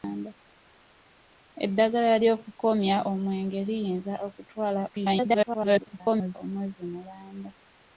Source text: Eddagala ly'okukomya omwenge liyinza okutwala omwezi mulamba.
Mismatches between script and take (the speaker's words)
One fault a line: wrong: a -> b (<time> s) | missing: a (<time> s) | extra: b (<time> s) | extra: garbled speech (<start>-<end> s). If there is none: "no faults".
extra: garbled speech (4.9-6.4 s)